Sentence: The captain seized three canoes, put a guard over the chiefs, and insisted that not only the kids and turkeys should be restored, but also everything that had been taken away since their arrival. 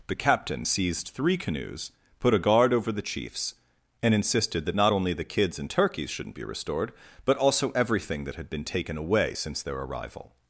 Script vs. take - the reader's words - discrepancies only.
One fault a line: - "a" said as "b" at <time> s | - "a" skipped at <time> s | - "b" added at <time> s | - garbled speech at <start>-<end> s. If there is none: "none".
- "should" said as "shouldn't" at 6.1 s